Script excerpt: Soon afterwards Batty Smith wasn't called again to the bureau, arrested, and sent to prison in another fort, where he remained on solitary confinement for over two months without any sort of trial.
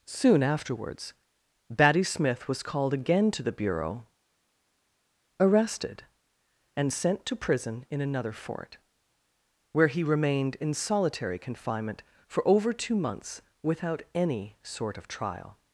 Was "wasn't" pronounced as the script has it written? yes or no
no